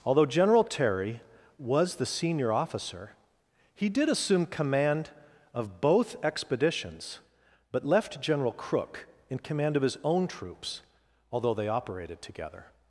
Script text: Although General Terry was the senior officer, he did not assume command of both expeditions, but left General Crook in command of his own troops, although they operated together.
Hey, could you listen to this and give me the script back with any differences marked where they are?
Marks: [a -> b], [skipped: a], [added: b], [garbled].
Although General Terry was the senior officer, he did [skipped: not] assume command of both expeditions, but left General Crook in command of his own troops, although they operated together.